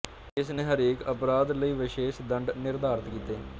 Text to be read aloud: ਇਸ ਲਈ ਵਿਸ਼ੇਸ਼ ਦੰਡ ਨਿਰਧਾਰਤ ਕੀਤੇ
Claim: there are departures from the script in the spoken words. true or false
true